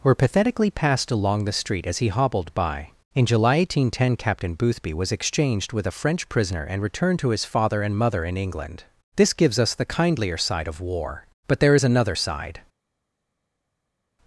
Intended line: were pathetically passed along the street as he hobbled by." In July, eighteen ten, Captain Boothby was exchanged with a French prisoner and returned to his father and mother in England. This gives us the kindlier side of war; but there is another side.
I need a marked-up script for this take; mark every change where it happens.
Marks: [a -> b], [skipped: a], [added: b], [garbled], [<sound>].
were pathetically passed along the street as he hobbled by." In July, eighteen ten, Captain Boothby was exchanged with a French prisoner and returned to his father and mother in England. This gives us the kindlier side of war; but there is another side.